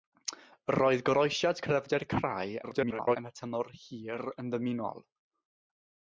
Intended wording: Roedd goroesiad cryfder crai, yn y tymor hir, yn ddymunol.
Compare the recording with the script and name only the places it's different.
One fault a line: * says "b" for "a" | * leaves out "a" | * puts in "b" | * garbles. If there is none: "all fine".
* garbles